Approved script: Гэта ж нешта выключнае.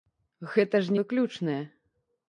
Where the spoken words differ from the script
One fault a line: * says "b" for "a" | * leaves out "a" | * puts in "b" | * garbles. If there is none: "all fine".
* leaves out "нешта"